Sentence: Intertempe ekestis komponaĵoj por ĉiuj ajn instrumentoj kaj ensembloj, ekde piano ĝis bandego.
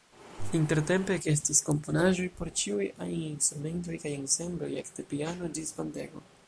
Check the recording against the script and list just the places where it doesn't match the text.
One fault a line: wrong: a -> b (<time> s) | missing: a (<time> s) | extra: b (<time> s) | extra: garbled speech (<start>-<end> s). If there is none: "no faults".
no faults